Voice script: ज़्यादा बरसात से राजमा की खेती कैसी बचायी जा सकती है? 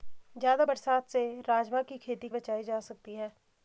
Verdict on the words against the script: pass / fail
fail